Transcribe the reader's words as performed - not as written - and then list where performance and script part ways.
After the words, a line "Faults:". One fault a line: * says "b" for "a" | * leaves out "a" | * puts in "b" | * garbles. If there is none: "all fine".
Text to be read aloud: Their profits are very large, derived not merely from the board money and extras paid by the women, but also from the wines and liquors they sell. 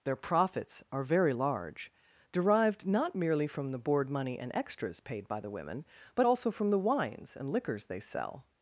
Their profits are very large, derived not merely from the board money and extras paid by the women, but also from the wines and liquors they sell.
Faults:
all fine